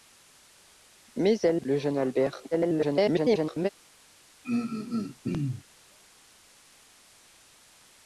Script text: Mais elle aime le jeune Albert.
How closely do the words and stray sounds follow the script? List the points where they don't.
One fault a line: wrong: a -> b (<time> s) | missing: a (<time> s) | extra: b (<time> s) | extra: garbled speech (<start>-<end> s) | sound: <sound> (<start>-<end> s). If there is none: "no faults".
missing: aime (1.6 s)
extra: garbled speech (2.5-3.7 s)
sound: throat clearing (4.4-5.6 s)